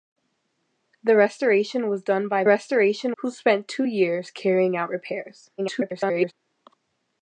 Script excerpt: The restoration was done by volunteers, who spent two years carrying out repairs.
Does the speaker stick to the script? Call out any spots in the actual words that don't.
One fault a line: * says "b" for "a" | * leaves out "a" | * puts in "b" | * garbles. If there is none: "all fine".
* says "restoration" for "volunteers"
* garbles